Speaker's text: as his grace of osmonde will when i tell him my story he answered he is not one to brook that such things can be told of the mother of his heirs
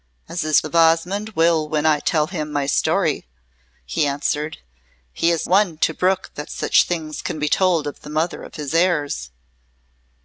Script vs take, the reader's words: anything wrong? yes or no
yes